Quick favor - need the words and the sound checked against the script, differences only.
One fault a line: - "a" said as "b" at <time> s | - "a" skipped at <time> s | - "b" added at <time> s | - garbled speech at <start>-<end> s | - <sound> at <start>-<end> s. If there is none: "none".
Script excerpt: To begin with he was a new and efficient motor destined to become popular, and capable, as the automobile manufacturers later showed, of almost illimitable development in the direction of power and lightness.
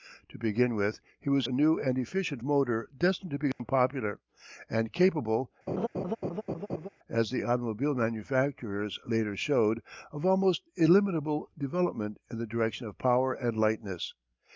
- dropout at 3.5-3.6 s
- laugh at 5.7-6.9 s